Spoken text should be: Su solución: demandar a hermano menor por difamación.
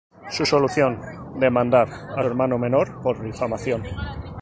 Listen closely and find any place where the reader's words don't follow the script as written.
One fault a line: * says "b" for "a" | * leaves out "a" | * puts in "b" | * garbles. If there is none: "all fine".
all fine